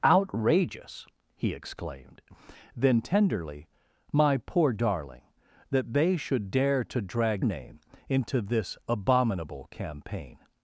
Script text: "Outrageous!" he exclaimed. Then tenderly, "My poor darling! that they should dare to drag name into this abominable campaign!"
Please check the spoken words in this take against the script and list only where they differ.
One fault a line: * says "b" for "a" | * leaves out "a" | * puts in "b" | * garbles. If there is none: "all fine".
all fine